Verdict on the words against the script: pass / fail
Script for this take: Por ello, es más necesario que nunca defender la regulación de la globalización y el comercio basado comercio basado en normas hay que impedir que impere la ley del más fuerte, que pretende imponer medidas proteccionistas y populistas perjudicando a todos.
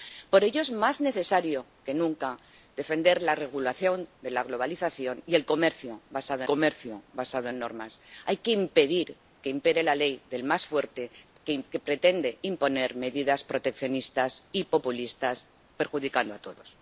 pass